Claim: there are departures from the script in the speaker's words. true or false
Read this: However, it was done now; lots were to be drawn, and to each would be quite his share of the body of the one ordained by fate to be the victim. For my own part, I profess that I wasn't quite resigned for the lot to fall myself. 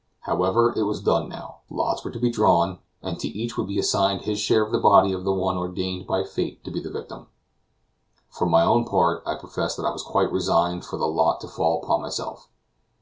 true